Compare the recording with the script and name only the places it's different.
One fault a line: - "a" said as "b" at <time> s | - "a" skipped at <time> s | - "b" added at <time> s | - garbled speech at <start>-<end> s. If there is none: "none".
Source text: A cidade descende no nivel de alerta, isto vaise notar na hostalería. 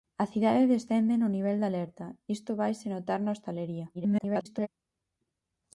- garbled speech at 3.9-4.7 s